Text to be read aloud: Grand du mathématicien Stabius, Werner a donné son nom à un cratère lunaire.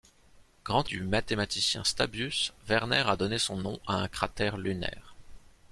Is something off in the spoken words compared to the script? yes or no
no